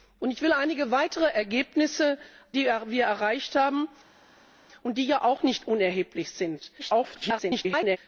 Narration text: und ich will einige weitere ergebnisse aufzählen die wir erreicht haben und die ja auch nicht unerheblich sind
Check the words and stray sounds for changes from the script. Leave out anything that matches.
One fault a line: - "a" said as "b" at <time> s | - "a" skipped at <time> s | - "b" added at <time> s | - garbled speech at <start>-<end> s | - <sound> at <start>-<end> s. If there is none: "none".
- "aufzählen" skipped at 2.2 s
- garbled speech at 6.8-8.0 s